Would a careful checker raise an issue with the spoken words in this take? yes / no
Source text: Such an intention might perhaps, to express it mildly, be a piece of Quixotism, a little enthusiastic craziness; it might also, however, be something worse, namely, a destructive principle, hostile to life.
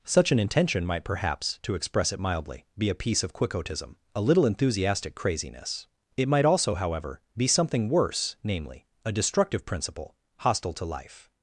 no